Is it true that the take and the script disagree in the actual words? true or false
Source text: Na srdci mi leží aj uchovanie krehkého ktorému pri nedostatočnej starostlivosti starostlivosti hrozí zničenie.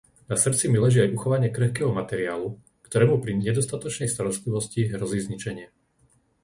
true